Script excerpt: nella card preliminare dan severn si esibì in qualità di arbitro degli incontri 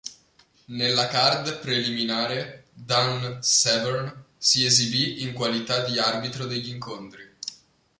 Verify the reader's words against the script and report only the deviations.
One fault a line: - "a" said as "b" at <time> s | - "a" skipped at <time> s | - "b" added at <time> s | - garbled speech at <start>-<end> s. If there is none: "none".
none